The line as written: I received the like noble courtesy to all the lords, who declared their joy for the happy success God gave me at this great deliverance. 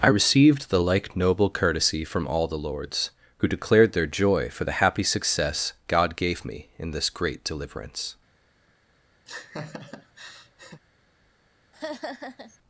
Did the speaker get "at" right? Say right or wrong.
wrong